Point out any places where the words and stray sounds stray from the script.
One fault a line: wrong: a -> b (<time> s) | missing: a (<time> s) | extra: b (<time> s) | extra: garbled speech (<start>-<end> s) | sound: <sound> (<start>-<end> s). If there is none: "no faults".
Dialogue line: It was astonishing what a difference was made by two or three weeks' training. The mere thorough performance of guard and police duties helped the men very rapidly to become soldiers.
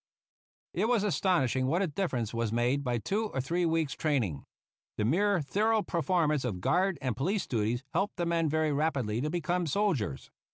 no faults